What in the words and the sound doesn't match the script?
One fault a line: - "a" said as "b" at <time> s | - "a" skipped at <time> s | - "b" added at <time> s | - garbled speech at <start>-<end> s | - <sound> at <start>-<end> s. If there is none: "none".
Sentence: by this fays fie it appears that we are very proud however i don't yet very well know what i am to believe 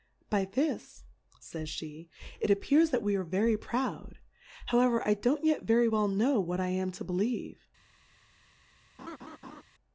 - laugh at 9.0-9.6 s